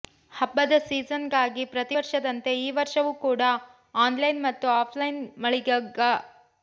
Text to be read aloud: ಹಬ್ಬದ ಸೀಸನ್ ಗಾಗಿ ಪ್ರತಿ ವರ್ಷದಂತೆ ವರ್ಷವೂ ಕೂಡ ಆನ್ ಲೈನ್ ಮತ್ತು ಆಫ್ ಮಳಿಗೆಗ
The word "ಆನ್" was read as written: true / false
true